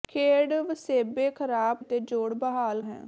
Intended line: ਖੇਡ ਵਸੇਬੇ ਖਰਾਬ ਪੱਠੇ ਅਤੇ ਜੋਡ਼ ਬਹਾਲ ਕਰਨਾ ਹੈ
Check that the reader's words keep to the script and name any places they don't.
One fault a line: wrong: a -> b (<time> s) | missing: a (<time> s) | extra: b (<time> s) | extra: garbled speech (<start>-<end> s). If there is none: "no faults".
missing: ਪੱਠੇ (1.8 s)
missing: ਕਰਨਾ (2.8 s)